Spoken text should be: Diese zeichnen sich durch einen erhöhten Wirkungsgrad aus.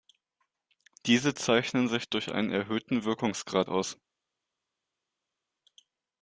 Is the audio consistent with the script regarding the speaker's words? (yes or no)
yes